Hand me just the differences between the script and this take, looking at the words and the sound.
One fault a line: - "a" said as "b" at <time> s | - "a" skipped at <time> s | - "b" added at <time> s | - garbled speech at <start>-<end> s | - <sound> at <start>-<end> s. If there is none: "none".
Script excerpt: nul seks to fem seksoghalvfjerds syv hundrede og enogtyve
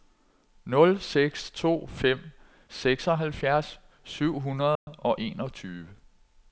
- dropout at 4.8-4.9 s